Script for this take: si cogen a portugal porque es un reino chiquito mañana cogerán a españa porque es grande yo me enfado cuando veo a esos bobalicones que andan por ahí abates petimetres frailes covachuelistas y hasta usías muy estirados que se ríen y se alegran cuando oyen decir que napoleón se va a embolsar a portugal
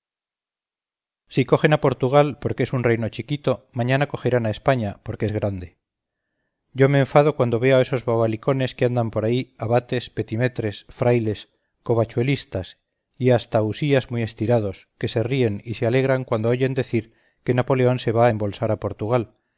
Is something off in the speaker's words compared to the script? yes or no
no